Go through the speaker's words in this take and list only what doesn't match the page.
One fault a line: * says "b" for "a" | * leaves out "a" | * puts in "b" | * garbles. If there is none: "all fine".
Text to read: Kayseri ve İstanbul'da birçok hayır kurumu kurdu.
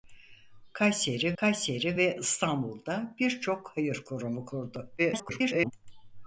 * puts in "kayseri"
* garbles